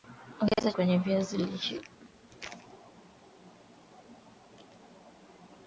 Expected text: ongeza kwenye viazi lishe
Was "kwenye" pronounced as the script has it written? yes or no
yes